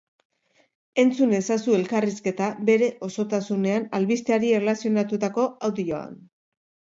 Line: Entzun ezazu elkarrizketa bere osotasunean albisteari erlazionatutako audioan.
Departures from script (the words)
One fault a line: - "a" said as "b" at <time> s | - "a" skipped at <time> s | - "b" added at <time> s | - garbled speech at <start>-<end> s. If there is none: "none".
none